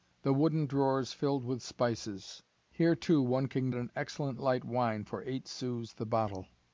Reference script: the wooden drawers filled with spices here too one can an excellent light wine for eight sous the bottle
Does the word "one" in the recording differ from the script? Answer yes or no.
no